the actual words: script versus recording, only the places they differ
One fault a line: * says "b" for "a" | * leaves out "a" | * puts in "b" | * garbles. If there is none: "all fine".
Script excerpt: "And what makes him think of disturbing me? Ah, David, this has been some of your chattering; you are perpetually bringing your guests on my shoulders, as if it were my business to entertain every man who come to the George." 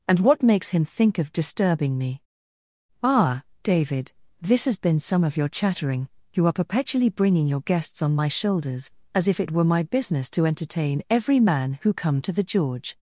all fine